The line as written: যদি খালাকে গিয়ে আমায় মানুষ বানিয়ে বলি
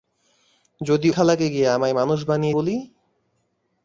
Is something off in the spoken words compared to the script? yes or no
no